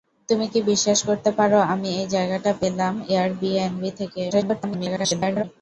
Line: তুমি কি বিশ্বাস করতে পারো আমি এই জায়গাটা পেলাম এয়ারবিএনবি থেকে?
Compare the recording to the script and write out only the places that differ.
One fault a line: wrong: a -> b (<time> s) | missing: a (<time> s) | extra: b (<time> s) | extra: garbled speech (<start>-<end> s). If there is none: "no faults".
extra: garbled speech (4.3-5.4 s)